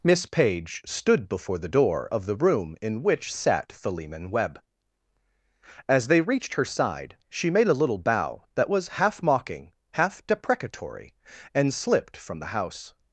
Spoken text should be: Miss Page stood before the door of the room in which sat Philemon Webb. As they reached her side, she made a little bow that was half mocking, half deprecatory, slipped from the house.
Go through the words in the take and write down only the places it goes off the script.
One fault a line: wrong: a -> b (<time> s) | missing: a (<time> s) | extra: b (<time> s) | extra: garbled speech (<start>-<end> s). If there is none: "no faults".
extra: and (11.5 s)